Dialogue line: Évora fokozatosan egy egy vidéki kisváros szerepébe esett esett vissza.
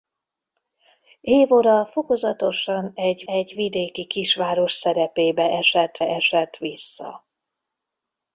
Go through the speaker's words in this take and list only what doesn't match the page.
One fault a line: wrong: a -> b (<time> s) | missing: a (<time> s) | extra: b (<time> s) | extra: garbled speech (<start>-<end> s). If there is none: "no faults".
no faults